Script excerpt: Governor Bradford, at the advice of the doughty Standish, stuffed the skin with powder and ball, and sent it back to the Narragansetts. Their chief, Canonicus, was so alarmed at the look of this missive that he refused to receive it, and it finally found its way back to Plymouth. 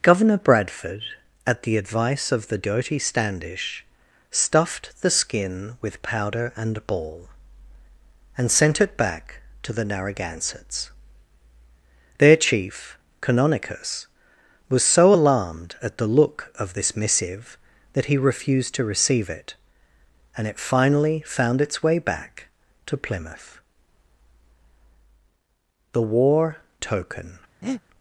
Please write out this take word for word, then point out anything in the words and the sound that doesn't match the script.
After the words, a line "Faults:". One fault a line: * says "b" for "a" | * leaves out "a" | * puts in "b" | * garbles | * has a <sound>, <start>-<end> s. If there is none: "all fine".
Governor Bradford, at the advice of the doughty Standish, stuffed the skin with powder and ball, and sent it back to the Narragansetts. Their chief, Canonicus, was so alarmed at the look of this missive that he refused to receive it, and it finally found its way back to Plymouth. THE WAR TOKEN
Faults:
* puts in "THE WAR TOKEN"
* has a breath, 27.6-27.8 s